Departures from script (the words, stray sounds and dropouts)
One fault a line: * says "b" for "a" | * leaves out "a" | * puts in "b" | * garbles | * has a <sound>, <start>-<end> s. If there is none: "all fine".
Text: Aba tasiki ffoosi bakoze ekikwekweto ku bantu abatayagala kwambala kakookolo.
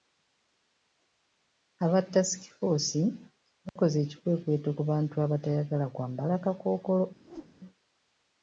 * has a dropout, 3.7-3.8 s
* has a whoosh, 7.2-7.6 s